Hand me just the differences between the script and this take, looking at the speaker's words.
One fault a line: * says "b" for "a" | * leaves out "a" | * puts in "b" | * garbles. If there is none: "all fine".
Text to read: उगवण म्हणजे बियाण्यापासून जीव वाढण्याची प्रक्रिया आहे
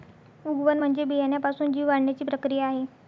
all fine